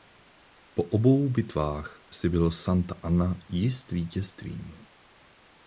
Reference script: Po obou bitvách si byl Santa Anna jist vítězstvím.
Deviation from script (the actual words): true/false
false